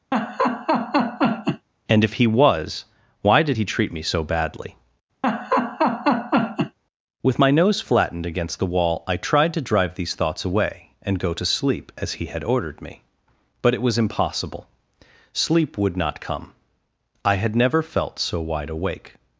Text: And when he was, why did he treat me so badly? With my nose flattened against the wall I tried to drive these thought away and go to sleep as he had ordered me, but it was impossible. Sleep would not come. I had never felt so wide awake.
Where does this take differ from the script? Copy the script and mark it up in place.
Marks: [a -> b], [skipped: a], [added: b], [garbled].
And [when -> if] he was, why did he treat me so badly? With my nose flattened against the wall I tried to drive these [thought -> thoughts] away and go to sleep as he had ordered me, but it was impossible. Sleep would not come. I had never felt so wide awake.